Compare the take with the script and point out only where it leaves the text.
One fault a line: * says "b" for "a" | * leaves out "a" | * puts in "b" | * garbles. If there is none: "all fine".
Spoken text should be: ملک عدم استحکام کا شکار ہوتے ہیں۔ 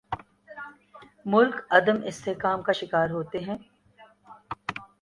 all fine